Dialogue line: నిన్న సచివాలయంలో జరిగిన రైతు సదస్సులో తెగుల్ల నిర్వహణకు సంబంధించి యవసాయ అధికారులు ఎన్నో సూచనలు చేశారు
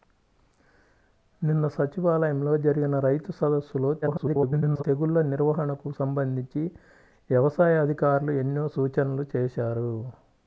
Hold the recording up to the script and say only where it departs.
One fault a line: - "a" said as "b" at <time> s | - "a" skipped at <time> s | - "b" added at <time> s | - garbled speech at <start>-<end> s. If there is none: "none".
- garbled speech at 4.0-4.8 s